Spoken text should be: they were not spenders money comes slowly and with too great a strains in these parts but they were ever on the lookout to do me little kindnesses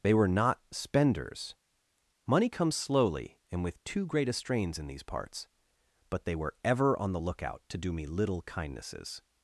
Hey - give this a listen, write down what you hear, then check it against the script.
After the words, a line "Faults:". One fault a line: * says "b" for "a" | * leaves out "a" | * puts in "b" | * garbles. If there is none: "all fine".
they were not spenders money comes slowly and with too great a strains in these parts but they were ever on the lookout to do me little kindnesses
Faults:
all fine